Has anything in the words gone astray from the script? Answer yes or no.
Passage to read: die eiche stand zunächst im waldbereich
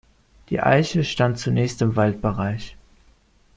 no